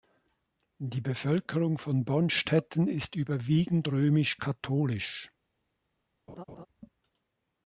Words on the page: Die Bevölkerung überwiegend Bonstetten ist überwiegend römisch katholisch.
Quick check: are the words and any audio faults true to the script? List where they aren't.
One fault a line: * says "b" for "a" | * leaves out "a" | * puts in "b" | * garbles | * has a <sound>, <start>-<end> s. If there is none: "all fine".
* says "von" for "überwiegend"
* has a laugh, 6.3-6.7 s